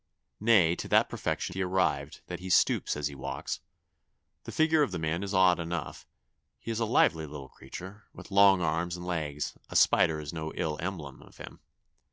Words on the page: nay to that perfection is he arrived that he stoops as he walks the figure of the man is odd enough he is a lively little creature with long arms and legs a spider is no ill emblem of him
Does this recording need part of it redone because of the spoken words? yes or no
yes